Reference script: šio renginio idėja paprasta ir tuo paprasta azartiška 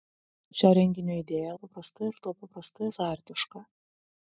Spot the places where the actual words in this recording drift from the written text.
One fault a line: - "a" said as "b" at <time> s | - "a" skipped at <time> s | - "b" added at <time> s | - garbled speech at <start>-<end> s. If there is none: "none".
none